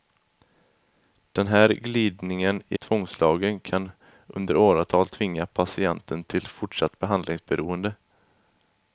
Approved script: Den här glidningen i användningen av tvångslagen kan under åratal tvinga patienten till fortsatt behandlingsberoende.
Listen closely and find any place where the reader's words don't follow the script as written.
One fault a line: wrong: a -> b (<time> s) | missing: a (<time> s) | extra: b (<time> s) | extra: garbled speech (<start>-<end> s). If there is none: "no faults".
missing: användningen av (2.8 s)